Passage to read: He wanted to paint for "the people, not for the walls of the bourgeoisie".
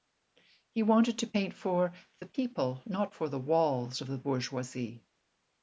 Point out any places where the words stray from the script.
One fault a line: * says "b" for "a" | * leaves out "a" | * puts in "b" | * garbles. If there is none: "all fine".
all fine